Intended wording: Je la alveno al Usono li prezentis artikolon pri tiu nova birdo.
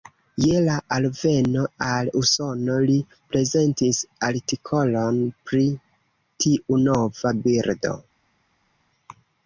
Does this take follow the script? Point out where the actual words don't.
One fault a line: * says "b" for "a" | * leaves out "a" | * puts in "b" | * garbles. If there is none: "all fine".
all fine